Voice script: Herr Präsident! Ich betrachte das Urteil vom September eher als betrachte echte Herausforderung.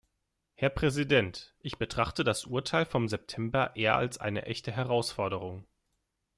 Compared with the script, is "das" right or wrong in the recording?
right